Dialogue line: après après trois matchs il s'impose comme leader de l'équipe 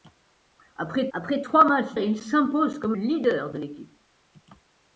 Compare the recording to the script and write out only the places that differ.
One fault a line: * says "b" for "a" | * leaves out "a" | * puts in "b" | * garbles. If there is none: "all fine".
all fine